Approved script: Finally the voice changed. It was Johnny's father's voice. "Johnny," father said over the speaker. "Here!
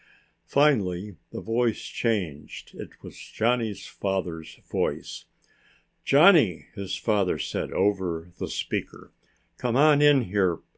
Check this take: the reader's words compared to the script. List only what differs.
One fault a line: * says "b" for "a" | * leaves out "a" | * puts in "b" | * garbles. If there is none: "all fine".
* puts in "his"
* puts in "Come on in"